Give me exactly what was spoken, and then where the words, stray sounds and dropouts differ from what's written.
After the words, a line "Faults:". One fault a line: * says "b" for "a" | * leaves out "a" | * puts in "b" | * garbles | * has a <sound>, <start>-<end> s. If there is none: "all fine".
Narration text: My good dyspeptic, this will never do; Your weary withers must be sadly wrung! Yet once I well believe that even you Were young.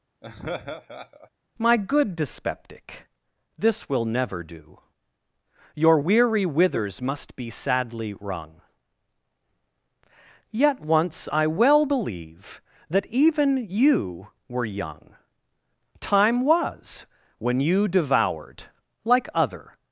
My good dyspeptic, this will never do; Your weary withers must be sadly wrung! Yet once I well believe that even you Were young. Time was when you devoured, like other
Faults:
* has a laugh, 0.2-1.3 s
* puts in "Time was when you devoured like other"